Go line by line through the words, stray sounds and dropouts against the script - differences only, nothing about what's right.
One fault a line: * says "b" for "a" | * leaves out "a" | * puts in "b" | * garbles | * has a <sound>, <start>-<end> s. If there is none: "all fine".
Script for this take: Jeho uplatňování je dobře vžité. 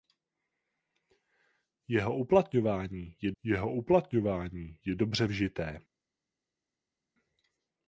* puts in "jeho uplatňování je"